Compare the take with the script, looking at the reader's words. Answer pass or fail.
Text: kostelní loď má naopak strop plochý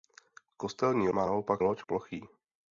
fail